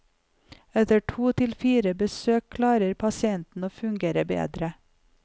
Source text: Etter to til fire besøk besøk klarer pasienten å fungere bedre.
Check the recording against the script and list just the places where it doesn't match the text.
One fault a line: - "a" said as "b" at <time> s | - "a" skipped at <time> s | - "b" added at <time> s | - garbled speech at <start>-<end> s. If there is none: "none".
- "besøk" skipped at 2.5 s